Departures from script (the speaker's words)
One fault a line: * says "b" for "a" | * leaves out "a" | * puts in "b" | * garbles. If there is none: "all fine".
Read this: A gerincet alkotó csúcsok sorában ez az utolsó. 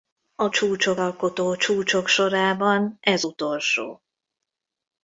* says "csúcsok" for "gerincet"
* leaves out "az"